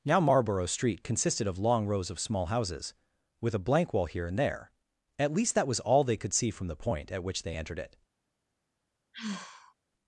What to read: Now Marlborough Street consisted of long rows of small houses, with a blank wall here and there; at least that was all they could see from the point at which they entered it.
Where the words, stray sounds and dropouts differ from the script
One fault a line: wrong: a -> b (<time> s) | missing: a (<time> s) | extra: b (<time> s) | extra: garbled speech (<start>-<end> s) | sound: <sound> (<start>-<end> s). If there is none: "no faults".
sound: sigh (9.1-9.7 s)